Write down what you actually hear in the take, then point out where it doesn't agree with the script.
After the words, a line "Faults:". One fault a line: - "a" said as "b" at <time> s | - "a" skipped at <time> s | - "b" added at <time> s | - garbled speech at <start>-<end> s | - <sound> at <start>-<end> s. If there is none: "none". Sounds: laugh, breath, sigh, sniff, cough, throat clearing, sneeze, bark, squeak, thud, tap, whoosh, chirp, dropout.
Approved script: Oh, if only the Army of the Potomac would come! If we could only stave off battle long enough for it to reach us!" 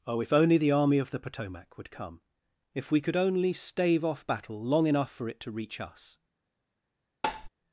Oh, if only the Army of the Potomac would come! If we could only stave off battle long enough for it to reach us!"
Faults:
- tap at 7.2-7.5 s